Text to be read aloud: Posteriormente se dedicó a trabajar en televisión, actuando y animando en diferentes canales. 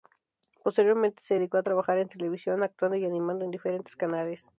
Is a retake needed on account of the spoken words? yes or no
no